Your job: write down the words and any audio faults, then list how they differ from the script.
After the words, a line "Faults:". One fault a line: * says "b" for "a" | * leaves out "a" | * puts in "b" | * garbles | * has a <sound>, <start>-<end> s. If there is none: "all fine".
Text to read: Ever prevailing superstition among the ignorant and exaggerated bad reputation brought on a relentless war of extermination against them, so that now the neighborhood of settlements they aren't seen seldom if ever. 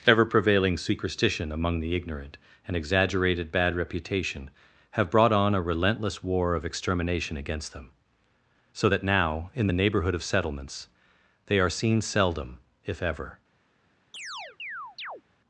Ever prevailing superstition among the ignorant and exaggerated bad reputation have brought on a relentless war of extermination against them, so that now in the neighborhood of settlements they are seen seldom if ever.
Faults:
* puts in "have"
* puts in "in"
* says "are" for "aren't"
* has a chirp, 14.1-15.2 s